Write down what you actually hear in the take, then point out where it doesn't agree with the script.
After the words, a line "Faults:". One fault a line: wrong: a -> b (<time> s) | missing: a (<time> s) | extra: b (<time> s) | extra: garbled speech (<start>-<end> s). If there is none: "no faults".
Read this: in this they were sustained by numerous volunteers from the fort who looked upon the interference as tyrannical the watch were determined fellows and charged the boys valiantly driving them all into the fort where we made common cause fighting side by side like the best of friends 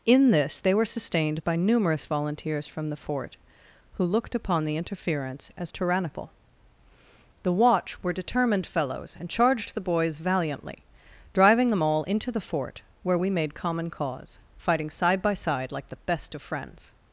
in this they were sustained by numerous volunteers from the fort who looked upon the interference as tyrannical the watch were determined fellows and charged the boys valiantly driving them all into the fort where we made common cause fighting side by side like the best of friends
Faults:
no faults